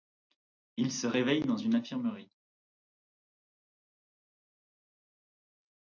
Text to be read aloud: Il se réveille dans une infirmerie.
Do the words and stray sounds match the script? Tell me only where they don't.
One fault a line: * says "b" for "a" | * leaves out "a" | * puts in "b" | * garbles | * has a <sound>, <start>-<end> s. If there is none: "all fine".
all fine